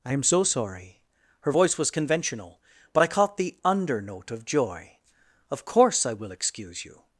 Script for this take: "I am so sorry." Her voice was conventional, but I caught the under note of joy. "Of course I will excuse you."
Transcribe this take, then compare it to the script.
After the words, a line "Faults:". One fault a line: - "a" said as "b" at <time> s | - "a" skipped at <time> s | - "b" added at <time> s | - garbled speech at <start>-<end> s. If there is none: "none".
"I am so sorry." Her voice was conventional, but I caught the under note of joy. "Of course I will excuse you."
Faults:
none